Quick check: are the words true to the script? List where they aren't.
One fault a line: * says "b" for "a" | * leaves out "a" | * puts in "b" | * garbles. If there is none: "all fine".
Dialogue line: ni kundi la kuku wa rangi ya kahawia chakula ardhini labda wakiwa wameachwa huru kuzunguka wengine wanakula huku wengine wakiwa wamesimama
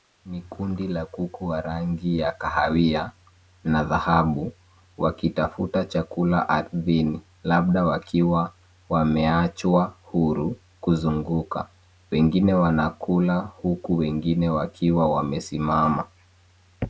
* puts in "na dhahabu wakitafuta"